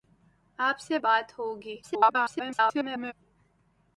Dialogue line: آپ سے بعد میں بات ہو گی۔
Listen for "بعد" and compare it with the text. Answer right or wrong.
wrong